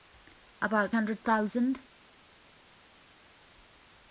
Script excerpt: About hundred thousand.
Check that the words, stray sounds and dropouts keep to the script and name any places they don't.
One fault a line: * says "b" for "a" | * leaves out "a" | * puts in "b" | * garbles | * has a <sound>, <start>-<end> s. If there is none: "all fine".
all fine